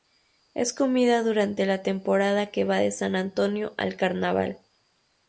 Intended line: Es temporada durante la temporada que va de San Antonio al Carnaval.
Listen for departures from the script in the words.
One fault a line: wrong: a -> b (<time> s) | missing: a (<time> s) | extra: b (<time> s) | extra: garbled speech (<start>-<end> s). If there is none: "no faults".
wrong: temporada -> comida (0.7 s)